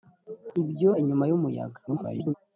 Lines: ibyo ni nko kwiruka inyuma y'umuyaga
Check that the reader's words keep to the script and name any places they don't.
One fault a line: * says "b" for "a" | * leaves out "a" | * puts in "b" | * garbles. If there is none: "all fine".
* leaves out "ni nko kwiruka"
* garbles